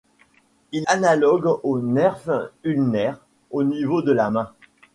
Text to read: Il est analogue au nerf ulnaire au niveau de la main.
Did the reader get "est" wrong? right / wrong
wrong